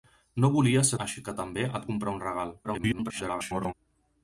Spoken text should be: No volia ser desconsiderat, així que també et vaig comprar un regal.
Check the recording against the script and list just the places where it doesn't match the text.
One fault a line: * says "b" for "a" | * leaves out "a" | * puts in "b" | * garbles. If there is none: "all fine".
* leaves out "desconsiderat"
* leaves out "vaig"
* garbles